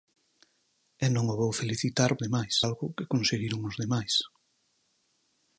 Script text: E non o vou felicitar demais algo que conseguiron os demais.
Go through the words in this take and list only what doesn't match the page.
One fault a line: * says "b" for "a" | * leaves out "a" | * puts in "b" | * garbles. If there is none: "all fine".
all fine